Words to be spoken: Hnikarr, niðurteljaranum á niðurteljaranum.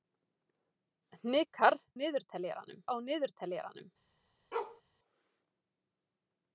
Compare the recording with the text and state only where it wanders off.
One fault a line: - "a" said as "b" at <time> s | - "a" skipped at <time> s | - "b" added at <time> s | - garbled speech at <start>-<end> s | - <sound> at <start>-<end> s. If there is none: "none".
- bark at 4.5-4.8 s